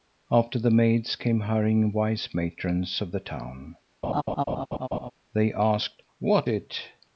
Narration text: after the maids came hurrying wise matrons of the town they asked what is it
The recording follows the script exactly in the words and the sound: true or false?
false